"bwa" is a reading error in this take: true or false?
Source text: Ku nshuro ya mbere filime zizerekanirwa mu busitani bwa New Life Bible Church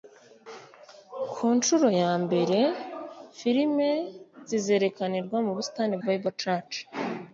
true